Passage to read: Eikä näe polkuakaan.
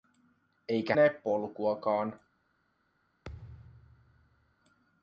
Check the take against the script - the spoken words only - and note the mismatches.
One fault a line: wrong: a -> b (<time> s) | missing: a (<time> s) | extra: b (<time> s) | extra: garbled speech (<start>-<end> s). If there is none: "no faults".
no faults